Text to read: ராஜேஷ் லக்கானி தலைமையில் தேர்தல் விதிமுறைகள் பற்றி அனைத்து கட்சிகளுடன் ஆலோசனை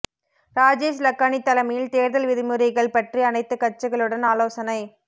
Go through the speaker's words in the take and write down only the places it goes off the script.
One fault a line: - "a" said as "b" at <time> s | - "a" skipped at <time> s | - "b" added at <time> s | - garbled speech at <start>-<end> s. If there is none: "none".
none